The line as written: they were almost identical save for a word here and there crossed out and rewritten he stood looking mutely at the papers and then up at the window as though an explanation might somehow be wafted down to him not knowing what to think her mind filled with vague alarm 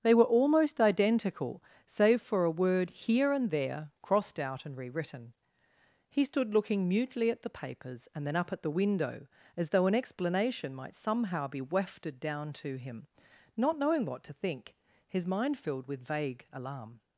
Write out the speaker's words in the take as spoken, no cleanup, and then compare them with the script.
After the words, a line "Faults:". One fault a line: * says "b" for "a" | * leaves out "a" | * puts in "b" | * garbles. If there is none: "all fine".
they were almost identical save for a word here and there crossed out and rewritten he stood looking mutely at the papers and then up at the window as though an explanation might somehow be wafted down to him not knowing what to think his mind filled with vague alarm
Faults:
* says "his" for "her"